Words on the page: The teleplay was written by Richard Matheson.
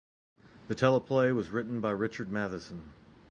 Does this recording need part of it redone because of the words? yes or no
no